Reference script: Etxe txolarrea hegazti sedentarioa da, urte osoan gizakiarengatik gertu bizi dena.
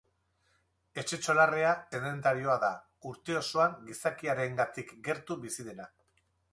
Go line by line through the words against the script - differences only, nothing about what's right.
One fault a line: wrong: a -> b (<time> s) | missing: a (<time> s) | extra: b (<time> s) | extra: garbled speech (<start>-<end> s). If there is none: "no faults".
missing: hegazti (1.7 s)